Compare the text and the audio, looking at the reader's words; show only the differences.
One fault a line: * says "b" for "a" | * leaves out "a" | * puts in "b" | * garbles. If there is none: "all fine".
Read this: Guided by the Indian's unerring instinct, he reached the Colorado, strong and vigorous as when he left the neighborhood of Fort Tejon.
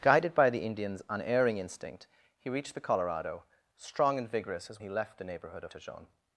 * leaves out "when"
* leaves out "Fort"